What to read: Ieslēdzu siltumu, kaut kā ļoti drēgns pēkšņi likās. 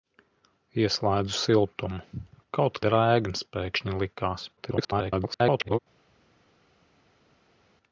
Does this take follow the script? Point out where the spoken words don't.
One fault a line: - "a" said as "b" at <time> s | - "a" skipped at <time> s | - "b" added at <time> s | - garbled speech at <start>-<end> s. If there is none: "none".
- "kā ļoti" skipped at 2.8 s
- garbled speech at 4.6-5.8 s